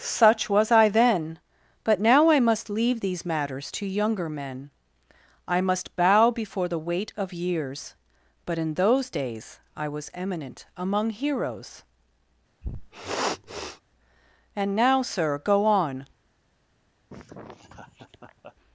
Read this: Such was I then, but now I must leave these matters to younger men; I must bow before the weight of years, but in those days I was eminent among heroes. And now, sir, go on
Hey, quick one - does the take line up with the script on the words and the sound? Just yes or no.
no